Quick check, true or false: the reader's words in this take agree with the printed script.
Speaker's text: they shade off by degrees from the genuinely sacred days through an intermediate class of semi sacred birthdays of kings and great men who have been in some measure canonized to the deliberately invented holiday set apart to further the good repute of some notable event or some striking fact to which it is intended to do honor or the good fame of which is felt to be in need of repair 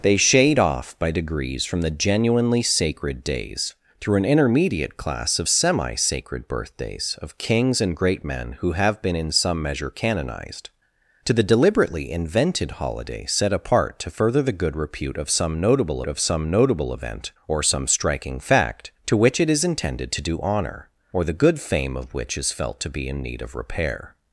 false